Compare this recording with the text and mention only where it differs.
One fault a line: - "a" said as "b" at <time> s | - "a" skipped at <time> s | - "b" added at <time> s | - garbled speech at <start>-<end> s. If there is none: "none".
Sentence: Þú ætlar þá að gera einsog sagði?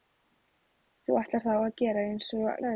none